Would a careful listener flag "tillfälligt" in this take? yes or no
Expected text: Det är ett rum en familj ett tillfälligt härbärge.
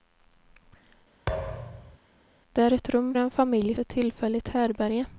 no